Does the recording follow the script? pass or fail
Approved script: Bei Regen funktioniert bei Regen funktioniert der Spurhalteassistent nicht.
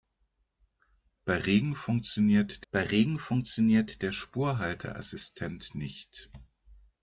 pass